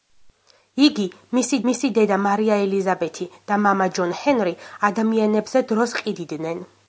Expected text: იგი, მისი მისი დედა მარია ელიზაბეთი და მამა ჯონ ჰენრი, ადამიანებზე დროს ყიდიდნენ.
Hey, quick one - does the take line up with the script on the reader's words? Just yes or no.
yes